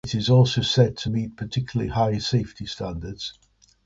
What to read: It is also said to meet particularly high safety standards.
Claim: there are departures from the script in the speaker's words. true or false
false